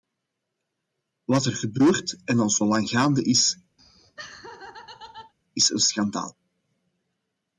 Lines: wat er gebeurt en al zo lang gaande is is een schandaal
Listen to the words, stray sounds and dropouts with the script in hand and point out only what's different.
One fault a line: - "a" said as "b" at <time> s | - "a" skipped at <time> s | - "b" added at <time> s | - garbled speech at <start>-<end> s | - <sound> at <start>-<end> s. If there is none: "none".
- laugh at 3.8-5.3 s